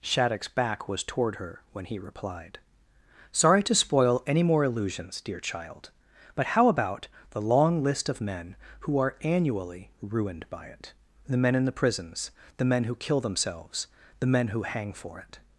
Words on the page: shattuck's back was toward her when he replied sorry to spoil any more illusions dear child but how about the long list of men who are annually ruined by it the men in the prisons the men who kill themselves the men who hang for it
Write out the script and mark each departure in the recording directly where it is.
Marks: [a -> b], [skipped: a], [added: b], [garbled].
shattuck's back was toward her when he replied sorry to spoil any more illusions dear child but how about the long list of men who are annually ruined by it the men in the prisons the men who kill themselves the men who hang for it